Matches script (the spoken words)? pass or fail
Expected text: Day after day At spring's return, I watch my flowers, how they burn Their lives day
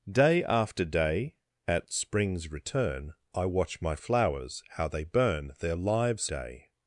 pass